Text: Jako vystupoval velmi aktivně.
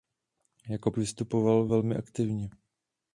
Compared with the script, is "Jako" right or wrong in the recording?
right